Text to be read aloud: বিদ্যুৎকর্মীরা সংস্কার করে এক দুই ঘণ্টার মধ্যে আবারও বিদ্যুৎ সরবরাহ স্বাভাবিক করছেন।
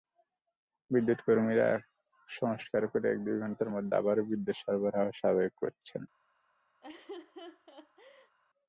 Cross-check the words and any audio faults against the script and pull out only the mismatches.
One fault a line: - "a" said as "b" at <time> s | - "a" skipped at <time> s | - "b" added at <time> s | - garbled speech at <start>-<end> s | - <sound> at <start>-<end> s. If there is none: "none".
- laugh at 6.8-8.4 s